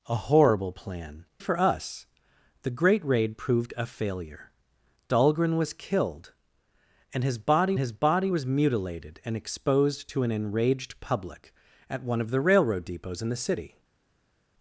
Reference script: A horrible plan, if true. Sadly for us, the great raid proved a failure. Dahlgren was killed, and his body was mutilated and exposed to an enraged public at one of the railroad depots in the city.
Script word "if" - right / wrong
wrong